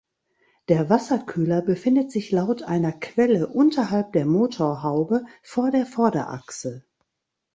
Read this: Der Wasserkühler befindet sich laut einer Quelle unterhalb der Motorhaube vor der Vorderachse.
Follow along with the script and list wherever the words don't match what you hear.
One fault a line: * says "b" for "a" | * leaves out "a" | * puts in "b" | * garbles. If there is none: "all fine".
all fine